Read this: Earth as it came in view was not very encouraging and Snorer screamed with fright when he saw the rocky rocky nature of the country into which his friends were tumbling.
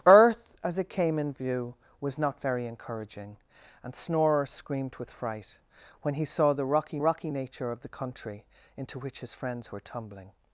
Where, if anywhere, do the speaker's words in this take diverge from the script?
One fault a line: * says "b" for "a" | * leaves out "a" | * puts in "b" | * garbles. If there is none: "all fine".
all fine